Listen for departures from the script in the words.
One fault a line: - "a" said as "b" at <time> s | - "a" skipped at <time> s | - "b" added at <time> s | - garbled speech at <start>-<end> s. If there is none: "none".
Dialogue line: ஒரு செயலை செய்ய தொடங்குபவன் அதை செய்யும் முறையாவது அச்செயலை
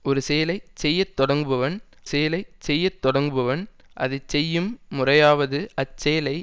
- "செயலை செய்ய தொடங்குபவன்" added at 2.0 s